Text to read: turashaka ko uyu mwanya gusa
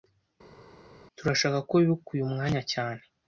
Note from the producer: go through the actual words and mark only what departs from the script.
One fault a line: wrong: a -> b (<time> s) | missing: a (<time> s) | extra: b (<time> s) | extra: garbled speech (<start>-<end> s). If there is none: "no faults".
extra: wibuka (1.8 s)
wrong: gusa -> cyane (2.7 s)